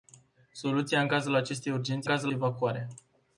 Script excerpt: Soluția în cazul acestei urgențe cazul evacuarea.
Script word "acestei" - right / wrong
right